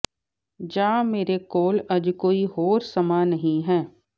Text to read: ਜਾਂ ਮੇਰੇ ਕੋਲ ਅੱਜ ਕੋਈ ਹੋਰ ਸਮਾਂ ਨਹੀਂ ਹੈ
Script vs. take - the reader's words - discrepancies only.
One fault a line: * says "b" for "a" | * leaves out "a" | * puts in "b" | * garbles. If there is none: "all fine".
all fine